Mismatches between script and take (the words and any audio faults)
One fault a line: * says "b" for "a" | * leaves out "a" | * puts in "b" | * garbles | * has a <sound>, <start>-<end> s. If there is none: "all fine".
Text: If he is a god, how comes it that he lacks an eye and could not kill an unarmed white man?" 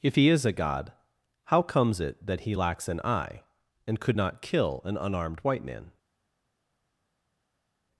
all fine